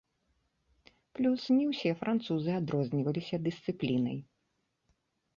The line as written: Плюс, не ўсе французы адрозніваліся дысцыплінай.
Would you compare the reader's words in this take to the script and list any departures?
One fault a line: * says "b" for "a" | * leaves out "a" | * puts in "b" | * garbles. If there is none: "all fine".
all fine